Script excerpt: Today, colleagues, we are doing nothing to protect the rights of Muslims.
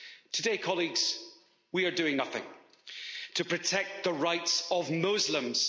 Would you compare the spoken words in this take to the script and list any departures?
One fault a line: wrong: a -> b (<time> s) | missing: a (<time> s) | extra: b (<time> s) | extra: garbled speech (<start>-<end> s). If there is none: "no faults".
no faults